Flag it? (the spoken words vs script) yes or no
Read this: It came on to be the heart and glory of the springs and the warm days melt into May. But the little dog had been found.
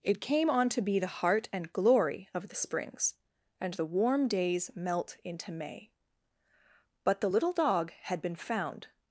no